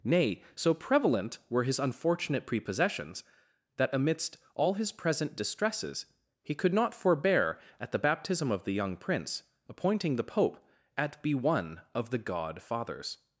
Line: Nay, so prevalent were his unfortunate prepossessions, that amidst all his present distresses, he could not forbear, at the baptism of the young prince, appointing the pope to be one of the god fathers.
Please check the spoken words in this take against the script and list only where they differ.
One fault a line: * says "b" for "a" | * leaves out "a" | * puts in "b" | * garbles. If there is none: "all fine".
* says "at" for "to"